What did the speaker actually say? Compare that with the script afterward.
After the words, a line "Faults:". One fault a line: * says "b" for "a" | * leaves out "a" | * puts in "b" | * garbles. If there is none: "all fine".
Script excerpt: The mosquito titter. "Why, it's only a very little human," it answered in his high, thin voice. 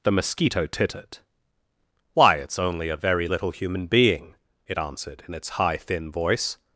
The mosquito tittered. "Why, it's only a very little human being," it answered in its high, thin voice.
Faults:
* says "tittered" for "titter"
* puts in "being"
* says "its" for "his"